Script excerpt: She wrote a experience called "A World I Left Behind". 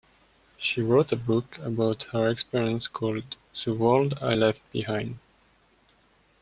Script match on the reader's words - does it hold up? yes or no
no